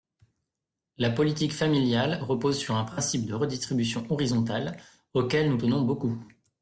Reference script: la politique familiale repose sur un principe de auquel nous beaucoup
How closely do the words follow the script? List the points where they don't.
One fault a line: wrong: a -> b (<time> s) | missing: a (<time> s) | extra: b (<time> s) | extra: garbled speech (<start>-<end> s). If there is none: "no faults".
extra: redistribution horizontale (3.3 s)
extra: tenons (5.5 s)